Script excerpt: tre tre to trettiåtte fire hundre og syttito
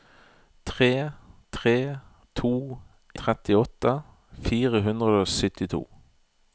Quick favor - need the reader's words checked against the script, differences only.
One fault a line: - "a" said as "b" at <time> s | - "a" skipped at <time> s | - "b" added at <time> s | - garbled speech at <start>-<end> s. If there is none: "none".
none